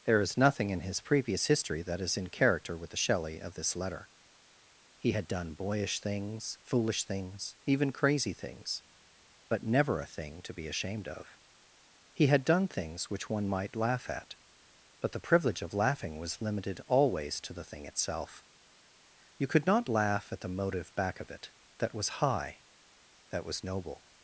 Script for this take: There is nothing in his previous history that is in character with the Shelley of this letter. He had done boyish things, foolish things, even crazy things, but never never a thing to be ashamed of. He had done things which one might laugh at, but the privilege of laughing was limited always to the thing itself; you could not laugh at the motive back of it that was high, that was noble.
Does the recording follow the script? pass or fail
fail